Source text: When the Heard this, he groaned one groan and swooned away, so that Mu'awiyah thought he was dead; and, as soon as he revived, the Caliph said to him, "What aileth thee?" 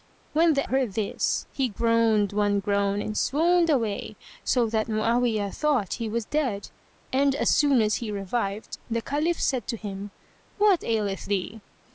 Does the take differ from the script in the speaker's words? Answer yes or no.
no